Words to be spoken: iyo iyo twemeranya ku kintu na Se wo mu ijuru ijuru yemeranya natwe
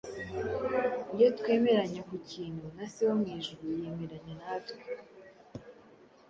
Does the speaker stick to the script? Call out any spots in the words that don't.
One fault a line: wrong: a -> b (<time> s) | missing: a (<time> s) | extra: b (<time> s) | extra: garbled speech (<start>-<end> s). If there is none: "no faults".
missing: iyo (1.3 s)
missing: ijuru (3.6 s)